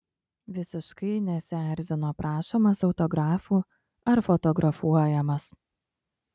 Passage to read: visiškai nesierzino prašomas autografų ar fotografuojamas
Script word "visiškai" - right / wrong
right